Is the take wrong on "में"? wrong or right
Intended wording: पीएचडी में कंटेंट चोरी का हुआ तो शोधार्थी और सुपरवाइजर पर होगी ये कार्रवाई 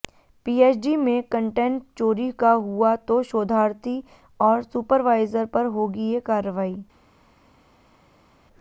right